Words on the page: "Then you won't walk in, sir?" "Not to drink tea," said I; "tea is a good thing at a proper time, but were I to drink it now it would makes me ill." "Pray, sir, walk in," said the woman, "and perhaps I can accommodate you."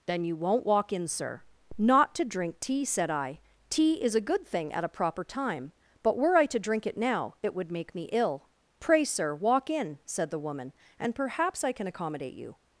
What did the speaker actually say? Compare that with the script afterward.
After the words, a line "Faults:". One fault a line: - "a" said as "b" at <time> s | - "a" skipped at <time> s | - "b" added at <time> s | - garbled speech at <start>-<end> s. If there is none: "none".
"Then you won't walk in, sir?" "Not to drink tea," said I; "tea is a good thing at a proper time, but were I to drink it now it would make me ill." "Pray, sir, walk in," said the woman, "and perhaps I can accommodate you."
Faults:
- "makes" said as "make" at 7.7 s